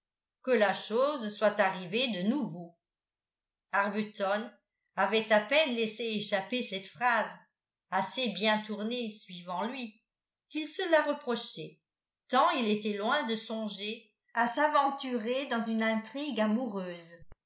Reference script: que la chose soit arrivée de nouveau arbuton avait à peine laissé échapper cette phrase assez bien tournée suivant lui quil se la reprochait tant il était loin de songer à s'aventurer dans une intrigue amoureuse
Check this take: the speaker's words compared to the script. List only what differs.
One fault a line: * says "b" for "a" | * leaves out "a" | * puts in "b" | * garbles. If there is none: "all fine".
all fine